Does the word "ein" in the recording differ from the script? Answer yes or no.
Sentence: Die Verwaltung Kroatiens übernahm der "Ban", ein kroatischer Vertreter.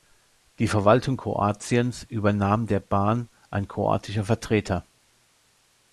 no